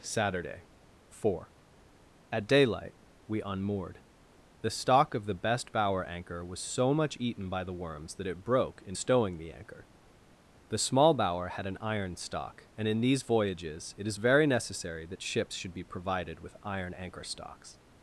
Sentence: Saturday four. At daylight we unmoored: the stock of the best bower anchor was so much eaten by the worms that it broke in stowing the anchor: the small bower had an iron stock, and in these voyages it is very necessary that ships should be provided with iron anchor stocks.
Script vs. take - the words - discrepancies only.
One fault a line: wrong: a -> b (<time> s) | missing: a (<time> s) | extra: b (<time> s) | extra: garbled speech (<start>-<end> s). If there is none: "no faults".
no faults